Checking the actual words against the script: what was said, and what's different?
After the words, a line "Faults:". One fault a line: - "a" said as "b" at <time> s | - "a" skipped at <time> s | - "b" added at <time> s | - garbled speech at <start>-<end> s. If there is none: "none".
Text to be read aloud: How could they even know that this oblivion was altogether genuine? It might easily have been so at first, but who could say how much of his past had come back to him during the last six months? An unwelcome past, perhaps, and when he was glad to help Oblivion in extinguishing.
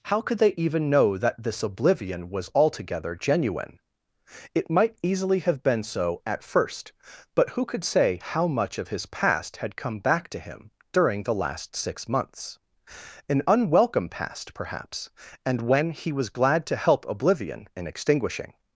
How could they even know that this oblivion was altogether genuine? It might easily have been so at first, but who could say how much of his past had come back to him during the last six months? An unwelcome past, perhaps, and when he was glad to help Oblivion in extinguishing.
Faults:
none